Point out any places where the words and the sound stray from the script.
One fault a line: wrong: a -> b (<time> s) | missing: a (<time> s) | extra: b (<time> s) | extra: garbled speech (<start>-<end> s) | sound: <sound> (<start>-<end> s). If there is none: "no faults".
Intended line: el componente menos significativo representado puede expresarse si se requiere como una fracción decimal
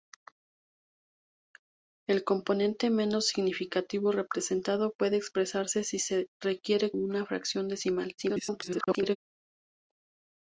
missing: como (6.9 s)
extra: garbled speech (8.2-9.2 s)